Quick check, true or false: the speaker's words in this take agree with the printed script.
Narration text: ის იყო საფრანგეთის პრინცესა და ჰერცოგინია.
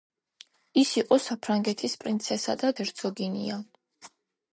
true